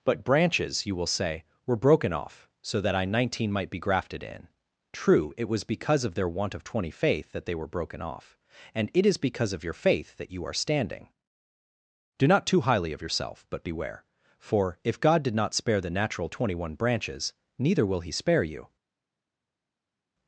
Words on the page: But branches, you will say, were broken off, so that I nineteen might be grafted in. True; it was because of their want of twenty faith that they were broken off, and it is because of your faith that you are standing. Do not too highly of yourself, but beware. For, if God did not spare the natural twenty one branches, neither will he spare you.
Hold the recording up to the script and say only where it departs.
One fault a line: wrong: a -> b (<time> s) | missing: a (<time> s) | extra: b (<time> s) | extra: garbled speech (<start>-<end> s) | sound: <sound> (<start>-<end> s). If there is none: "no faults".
no faults